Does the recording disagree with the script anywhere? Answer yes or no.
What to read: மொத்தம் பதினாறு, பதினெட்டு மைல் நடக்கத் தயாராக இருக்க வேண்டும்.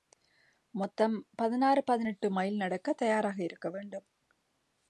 no